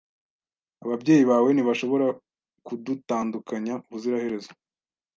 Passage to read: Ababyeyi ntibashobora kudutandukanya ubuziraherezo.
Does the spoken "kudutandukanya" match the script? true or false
true